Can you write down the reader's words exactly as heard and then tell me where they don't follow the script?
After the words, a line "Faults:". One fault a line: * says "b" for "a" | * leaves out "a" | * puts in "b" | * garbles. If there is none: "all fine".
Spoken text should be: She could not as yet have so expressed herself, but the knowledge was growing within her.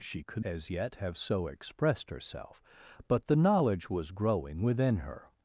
She could as yet have so expressed herself, but the knowledge was growing within her.
Faults:
* leaves out "not"